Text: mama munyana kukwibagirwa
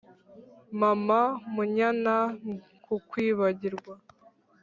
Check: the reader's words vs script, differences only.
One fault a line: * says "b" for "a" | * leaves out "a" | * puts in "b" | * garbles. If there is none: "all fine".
all fine